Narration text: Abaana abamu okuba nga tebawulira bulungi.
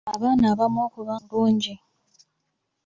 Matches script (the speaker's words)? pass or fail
fail